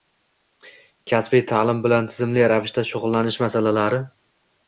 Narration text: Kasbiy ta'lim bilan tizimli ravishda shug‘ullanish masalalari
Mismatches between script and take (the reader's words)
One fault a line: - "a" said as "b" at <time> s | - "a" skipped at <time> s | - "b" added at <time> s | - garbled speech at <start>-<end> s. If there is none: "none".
none